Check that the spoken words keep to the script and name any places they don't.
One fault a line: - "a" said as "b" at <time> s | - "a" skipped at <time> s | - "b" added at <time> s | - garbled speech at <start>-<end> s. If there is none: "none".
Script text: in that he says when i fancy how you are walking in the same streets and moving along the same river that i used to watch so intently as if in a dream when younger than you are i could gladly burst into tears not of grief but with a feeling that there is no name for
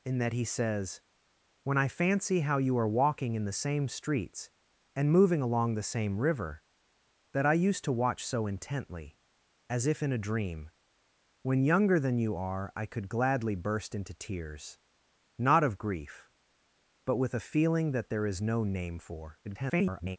- garbled speech at 19.4-20.2 s